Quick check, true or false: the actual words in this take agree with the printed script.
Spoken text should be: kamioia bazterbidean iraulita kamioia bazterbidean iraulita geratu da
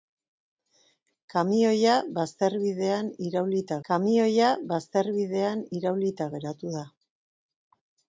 true